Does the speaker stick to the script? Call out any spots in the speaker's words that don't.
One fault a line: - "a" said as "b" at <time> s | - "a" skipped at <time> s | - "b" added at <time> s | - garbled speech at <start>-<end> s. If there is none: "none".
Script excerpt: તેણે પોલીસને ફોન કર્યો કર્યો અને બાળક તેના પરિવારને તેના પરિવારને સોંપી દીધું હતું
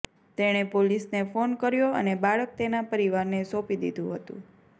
- "કર્યો" skipped at 1.9 s
- "તેના પરિવારને" skipped at 3.5 s